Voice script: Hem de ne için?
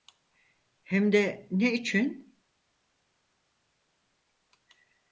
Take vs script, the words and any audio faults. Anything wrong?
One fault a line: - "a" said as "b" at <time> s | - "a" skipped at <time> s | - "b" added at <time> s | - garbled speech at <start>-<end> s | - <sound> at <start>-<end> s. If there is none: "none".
none